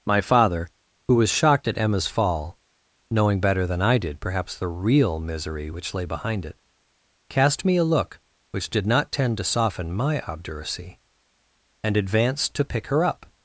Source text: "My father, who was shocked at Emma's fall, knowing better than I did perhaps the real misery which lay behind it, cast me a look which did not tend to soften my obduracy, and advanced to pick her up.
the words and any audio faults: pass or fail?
pass